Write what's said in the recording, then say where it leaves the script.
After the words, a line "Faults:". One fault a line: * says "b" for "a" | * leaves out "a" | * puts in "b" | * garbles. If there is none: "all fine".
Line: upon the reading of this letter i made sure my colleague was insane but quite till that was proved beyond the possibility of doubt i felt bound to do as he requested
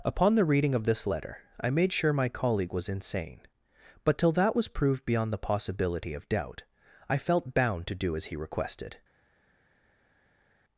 upon the reading of this letter i made sure my colleague was insane but till that was proved beyond the possibility of doubt i felt bound to do as he requested
Faults:
* leaves out "quite"